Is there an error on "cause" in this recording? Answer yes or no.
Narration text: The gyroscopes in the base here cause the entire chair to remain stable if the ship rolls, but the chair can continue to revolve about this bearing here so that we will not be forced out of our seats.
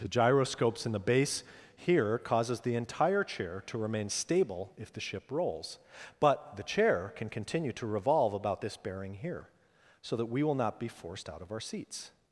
yes